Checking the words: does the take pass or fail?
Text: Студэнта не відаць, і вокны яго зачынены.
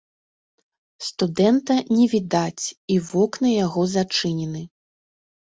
pass